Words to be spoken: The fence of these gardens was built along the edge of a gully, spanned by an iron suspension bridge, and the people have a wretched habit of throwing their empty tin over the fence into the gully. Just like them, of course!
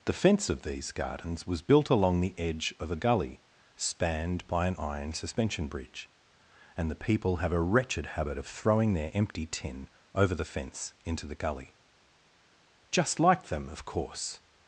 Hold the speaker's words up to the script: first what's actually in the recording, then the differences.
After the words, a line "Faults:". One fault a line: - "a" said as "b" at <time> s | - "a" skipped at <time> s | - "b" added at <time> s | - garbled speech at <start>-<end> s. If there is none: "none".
The fence of these gardens was built along the edge of a gully, spanned by an iron suspension bridge, and the people have a wretched habit of throwing their empty tin over the fence into the gully. Just like them, of course!
Faults:
none